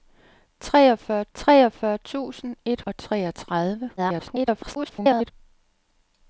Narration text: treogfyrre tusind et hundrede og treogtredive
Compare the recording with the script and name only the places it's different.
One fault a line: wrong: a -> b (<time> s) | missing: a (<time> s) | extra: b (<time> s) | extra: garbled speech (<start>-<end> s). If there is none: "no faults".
extra: treogfyrre (1.3 s)
missing: hundrede (2.8 s)
extra: garbled speech (4.0-5.3 s)